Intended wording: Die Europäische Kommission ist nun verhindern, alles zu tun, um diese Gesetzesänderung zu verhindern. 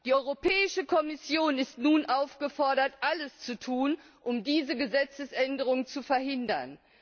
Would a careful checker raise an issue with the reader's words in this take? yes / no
yes